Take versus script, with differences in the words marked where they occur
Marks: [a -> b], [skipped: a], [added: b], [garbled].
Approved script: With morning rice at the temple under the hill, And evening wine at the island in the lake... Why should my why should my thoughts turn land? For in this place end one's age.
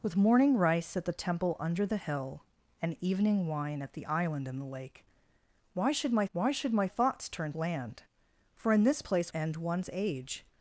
With morning rice at the temple under the hill, And evening wine at the island in the lake... Why should my why should my thoughts turn land? For in this place end one's age.